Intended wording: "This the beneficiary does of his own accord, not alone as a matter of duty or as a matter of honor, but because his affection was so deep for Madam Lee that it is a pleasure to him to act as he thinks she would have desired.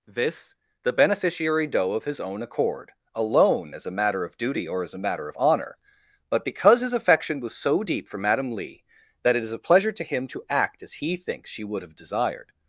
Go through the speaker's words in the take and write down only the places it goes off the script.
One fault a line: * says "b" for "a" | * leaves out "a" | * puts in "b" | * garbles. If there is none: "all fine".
* says "doe" for "does"
* leaves out "not"